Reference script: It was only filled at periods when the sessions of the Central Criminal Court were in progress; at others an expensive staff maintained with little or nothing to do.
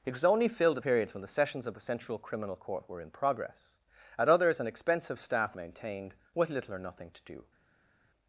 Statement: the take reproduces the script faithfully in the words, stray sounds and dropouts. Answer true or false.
true